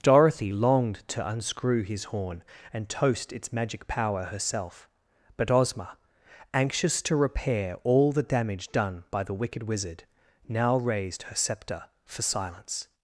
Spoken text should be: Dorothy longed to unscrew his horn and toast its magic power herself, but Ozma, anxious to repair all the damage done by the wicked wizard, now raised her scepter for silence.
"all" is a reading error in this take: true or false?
false